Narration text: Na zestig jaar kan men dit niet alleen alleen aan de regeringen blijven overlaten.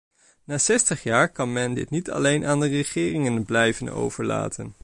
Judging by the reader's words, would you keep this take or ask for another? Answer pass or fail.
fail